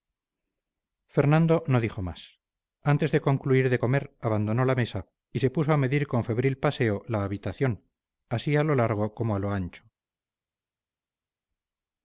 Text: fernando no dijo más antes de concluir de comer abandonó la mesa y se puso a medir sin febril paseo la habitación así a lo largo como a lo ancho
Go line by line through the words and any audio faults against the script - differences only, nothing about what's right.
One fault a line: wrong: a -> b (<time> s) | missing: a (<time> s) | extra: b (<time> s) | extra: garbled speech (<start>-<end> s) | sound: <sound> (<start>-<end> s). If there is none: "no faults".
wrong: sin -> con (6.1 s)